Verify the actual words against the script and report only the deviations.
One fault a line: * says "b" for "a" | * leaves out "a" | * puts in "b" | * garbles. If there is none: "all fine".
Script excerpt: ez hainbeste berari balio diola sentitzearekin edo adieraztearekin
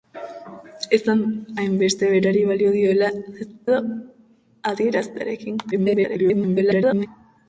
* leaves out "sentitzearekin"
* garbles